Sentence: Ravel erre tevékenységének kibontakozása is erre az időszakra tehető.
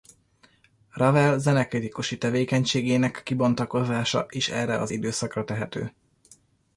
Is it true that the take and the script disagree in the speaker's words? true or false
true